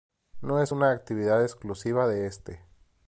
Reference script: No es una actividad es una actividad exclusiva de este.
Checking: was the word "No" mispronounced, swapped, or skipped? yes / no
no